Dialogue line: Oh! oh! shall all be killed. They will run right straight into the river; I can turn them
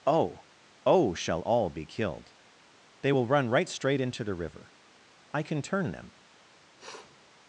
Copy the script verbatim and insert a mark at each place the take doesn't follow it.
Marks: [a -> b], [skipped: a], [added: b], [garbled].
Oh! oh! shall all be killed. They will run right straight into the river; I can turn them